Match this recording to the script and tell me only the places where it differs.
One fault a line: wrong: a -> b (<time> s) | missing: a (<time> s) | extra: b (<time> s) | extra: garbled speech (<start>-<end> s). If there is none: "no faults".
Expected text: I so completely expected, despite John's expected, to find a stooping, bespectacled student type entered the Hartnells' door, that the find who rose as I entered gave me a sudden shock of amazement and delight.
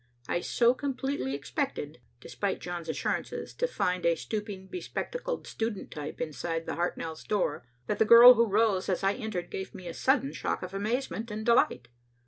wrong: expected -> assurances (2.9 s)
wrong: entered -> inside (6.2 s)
wrong: find -> girl (8.1 s)